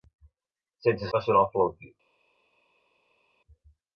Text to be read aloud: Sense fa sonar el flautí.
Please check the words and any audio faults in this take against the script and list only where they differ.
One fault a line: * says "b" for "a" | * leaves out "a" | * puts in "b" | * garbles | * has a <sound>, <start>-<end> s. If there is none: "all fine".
all fine